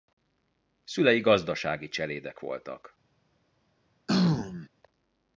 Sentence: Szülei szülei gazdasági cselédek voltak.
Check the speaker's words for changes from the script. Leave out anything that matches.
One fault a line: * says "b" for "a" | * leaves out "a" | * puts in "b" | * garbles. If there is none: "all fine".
* leaves out "szülei"